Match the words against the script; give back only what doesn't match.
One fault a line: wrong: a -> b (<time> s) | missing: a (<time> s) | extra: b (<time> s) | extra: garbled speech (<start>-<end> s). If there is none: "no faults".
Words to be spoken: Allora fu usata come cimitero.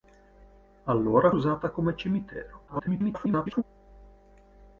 missing: fu (1.3 s)
extra: garbled speech (2.7-3.6 s)